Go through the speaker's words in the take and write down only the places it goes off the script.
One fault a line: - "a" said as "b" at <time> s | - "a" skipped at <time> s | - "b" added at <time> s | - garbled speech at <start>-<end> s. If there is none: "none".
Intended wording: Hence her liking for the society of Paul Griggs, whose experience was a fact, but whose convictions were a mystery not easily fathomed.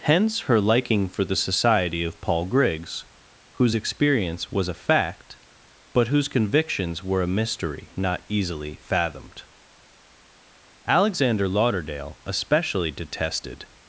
- "Alexander Lauderdale especially detested" added at 10.9 s